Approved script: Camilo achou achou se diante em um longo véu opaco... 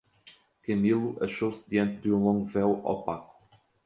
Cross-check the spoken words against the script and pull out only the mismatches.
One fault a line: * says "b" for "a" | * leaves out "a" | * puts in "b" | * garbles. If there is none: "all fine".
* leaves out "achou"
* says "de" for "em"